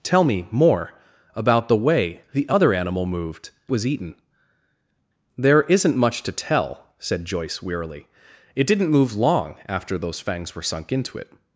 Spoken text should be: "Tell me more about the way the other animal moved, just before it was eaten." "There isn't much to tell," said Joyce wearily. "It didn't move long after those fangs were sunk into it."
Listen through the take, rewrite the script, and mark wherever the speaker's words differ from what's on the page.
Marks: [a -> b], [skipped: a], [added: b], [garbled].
"Tell me more about the way the other animal moved, [skipped: just before it] was eaten." "There isn't much to tell," said Joyce wearily. "It didn't move long after those fangs were sunk into it."